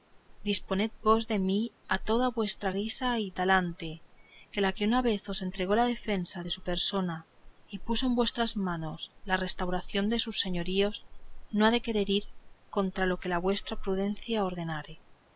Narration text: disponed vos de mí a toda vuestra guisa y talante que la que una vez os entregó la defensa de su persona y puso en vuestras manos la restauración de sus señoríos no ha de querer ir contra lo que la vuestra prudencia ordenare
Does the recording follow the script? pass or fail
pass